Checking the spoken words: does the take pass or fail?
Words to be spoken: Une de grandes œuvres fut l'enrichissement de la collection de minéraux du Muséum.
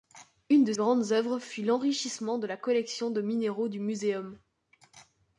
pass